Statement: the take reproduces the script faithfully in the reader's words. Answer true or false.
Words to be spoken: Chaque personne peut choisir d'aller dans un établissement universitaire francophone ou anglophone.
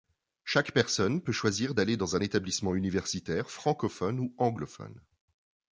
true